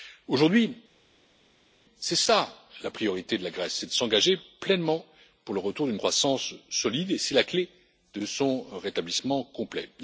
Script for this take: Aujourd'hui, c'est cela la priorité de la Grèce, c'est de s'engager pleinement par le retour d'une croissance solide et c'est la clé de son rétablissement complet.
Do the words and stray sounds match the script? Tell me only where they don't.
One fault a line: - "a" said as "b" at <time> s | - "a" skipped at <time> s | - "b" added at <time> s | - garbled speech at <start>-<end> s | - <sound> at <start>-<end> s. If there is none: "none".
- "par" said as "pour" at 5.4 s